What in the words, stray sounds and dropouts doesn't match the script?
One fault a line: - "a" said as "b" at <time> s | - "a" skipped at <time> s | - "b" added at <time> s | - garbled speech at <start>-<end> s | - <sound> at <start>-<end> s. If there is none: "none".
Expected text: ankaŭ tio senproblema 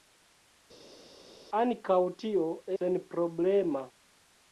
none